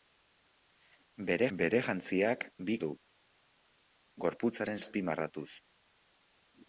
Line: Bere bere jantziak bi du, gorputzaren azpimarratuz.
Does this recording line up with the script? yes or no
yes